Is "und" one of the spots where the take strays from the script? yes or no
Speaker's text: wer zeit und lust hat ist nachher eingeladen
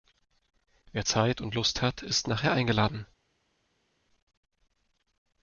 no